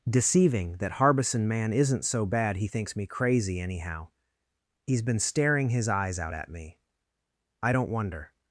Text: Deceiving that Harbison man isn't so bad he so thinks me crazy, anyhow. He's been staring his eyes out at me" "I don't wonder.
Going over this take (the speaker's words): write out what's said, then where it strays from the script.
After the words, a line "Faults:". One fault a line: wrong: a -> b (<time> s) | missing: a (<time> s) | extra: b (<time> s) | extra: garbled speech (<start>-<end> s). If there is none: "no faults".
Deceiving that Harbison man isn't so bad he thinks me crazy, anyhow. He's been staring his eyes out at me" "I don't wonder.
Faults:
missing: so (2.7 s)